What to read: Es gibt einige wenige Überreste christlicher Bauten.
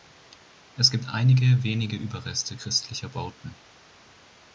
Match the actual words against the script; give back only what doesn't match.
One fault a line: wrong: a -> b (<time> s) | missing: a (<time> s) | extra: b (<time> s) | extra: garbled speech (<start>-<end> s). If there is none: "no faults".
no faults